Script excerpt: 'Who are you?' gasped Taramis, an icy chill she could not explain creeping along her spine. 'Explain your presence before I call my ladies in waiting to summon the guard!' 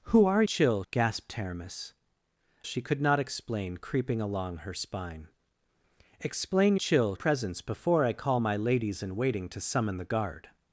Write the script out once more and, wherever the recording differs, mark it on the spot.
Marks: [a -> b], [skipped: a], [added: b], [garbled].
'Who are [you?' -> chill] gasped Taramis, [skipped: an icy chill] she could not explain creeping along her spine. 'Explain [your -> chill] presence before I call my ladies in waiting to summon the guard!'